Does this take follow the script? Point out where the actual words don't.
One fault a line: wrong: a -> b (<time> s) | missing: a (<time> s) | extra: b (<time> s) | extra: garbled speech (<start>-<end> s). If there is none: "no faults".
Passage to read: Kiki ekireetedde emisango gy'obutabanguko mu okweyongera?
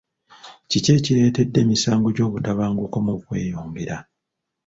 no faults